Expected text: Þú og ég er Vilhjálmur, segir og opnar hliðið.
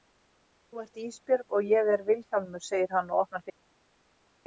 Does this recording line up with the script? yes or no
no